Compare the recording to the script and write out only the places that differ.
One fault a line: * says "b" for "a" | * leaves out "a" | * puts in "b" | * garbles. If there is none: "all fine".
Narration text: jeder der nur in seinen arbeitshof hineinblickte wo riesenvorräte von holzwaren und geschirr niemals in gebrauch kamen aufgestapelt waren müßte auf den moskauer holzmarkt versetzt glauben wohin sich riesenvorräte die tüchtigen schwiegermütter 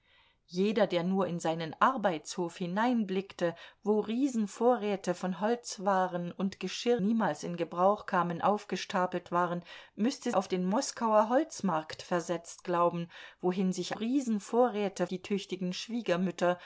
all fine